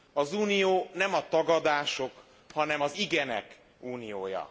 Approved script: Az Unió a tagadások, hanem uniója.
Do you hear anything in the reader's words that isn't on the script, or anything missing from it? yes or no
yes